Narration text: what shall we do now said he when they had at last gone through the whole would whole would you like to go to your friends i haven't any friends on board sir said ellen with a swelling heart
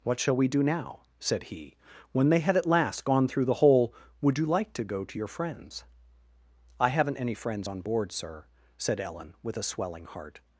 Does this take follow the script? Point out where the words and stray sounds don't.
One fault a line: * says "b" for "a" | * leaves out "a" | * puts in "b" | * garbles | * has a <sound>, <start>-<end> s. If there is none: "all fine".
* leaves out "whole would"